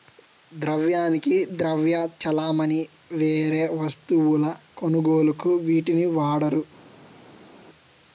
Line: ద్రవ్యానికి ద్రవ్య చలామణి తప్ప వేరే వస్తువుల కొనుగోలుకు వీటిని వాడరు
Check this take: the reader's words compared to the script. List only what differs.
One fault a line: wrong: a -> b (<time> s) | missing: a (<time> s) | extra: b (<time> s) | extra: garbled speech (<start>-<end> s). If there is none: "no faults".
missing: తప్ప (2.8 s)